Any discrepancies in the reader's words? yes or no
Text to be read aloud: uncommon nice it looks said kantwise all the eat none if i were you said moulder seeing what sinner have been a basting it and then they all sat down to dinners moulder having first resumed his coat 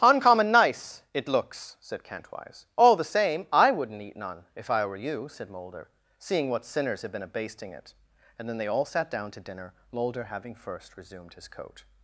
yes